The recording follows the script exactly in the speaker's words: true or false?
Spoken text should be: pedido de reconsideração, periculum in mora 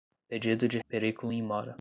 false